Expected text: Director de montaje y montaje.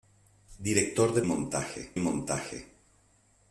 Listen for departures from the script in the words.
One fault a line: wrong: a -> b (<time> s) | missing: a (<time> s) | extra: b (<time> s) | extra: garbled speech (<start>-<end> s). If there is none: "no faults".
no faults